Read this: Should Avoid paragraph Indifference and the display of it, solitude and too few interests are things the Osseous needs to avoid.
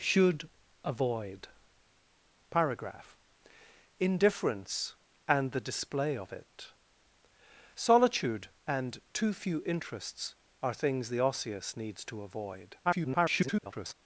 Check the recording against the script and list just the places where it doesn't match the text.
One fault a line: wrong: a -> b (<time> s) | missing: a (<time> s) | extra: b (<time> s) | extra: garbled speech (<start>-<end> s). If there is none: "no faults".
extra: garbled speech (12.8-13.9 s)